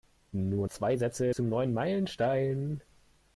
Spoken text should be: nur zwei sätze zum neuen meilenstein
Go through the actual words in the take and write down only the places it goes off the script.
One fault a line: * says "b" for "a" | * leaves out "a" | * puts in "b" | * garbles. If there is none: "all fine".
all fine